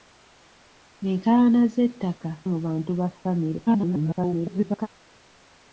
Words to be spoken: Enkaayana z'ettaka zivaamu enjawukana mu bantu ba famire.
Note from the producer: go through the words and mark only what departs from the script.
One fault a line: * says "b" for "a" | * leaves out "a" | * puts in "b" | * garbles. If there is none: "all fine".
* leaves out "zivaamu enjawukana"
* garbles